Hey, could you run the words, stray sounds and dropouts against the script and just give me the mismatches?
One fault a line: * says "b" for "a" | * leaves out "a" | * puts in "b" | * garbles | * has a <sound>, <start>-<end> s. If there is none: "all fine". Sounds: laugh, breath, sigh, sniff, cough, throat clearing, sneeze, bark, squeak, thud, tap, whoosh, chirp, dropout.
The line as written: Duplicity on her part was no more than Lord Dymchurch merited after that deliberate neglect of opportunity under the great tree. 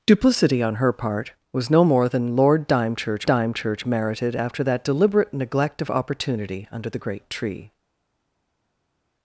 * puts in "Dymchurch"